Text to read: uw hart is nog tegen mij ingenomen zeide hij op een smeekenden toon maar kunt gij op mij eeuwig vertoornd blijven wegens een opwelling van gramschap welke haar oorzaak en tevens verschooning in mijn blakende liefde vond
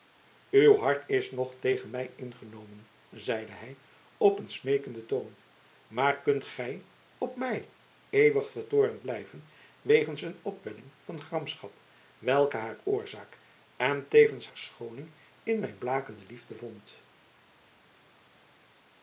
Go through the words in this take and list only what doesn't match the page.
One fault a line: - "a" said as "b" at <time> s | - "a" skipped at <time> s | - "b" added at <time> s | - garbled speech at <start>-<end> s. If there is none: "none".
none